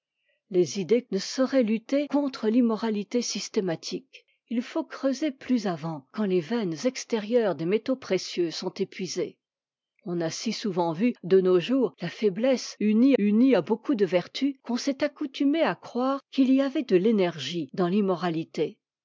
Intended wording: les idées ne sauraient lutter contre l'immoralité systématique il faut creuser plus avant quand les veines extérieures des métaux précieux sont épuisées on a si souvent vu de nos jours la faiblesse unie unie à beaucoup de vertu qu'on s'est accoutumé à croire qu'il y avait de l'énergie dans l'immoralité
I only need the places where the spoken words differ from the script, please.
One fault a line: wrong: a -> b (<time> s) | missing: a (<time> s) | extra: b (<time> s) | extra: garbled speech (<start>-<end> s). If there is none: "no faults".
no faults